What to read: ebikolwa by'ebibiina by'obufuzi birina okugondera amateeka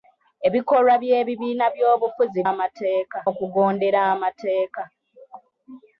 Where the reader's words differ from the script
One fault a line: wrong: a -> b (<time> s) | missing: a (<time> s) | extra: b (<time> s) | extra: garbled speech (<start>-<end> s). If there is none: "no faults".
wrong: birina -> amateeka (2.5 s)